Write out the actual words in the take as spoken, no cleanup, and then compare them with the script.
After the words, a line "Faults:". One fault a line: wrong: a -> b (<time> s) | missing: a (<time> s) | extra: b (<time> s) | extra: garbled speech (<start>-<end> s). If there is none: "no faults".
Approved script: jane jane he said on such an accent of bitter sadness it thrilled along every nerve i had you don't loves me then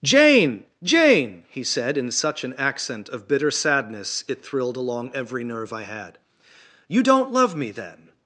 jane jane he said in such an accent of bitter sadness it thrilled along every nerve i had you don't love me then
Faults:
wrong: on -> in (2.0 s)
wrong: loves -> love (7.3 s)